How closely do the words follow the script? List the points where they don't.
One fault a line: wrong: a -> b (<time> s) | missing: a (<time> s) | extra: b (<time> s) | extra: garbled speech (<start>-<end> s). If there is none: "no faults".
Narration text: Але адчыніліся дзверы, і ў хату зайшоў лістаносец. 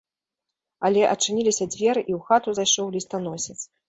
no faults